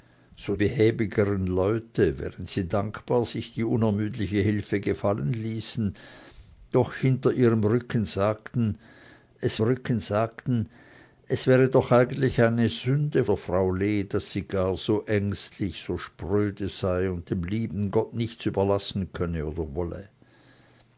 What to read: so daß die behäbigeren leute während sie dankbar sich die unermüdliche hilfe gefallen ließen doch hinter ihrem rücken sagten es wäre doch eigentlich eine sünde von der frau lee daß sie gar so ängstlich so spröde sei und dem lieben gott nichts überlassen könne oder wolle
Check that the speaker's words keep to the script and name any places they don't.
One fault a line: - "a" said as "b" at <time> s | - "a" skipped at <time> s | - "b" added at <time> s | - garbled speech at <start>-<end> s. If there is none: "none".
- "daß die" skipped at 0.6 s
- "rücken sagten es" added at 9.6 s
- "von" skipped at 13.2 s